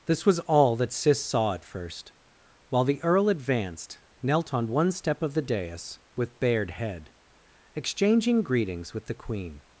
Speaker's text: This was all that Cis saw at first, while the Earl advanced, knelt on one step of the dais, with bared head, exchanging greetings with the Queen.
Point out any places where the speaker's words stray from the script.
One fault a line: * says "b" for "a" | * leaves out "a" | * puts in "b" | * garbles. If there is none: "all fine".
all fine